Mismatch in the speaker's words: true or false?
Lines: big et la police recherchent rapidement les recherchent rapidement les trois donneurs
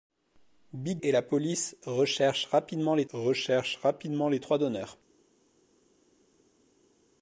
false